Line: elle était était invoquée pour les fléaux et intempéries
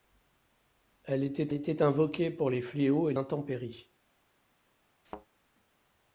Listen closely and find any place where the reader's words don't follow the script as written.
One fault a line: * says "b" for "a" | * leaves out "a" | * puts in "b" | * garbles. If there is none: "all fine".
all fine